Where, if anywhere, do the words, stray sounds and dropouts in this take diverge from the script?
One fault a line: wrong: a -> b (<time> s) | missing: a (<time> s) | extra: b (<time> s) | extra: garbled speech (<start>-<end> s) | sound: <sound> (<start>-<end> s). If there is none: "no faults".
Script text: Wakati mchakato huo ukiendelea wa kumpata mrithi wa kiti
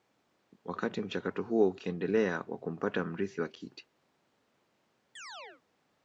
sound: chirp (5.2-5.6 s)